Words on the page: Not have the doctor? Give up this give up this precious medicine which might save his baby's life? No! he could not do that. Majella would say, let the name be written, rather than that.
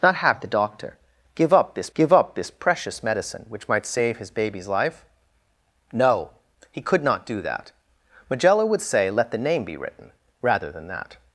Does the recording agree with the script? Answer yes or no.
yes